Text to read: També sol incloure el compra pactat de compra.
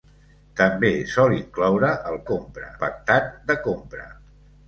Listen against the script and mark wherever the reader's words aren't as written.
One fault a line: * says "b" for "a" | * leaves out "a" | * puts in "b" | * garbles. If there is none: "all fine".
all fine